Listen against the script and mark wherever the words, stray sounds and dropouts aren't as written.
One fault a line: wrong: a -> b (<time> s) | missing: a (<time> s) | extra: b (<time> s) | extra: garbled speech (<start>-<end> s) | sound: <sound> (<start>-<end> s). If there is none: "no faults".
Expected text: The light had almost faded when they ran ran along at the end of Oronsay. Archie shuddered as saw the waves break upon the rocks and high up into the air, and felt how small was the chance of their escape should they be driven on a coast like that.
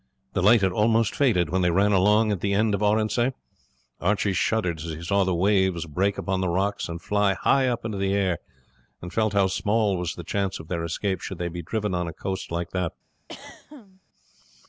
missing: ran (1.9 s)
extra: he (4.8 s)
extra: fly (7.0 s)
sound: throat clearing (13.3-14.0 s)